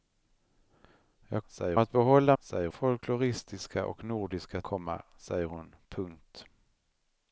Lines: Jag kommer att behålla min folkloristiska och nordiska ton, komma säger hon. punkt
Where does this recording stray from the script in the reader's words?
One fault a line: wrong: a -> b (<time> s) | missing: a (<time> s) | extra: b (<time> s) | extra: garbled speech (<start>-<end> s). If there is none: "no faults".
wrong: kommer -> säger (1.5 s)
wrong: min -> säger (2.4 s)
missing: ton (4.6 s)